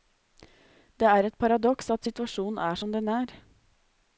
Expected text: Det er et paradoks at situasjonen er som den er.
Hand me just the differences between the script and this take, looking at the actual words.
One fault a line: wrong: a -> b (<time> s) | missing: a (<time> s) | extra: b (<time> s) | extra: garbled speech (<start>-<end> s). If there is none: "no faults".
no faults